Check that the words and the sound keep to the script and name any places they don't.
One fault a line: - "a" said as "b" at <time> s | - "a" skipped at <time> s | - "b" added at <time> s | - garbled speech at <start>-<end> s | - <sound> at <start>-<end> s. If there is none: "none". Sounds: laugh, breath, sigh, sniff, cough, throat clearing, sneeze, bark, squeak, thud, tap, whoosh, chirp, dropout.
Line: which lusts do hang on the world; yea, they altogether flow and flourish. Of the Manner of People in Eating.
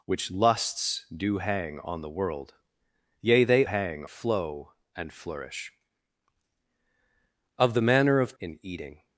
- "altogether" said as "hang" at 3.6 s
- "People" skipped at 8.4 s